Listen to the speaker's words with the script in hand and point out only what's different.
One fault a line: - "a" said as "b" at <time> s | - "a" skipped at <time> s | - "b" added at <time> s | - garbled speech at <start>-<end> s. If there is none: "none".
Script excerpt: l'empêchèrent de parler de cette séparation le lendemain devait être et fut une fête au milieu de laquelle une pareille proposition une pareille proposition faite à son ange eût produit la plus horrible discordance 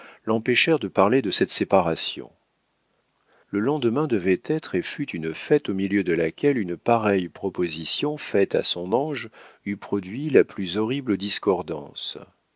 - "une pareille proposition" skipped at 8.2 s